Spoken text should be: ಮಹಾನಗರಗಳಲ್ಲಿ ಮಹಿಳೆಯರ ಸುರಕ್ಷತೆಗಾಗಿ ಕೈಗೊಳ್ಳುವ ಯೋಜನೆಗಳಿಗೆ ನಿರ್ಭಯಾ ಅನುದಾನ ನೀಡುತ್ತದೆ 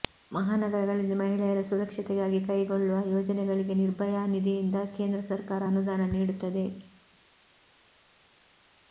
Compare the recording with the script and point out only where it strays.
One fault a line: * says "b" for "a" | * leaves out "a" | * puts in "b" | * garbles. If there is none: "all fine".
* puts in "ನಿಧಿಯಿಂದ ಕೇಂದ್ರ ಸರ್ಕಾರ"